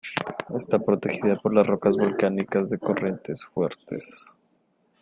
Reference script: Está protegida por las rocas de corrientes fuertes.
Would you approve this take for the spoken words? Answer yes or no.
no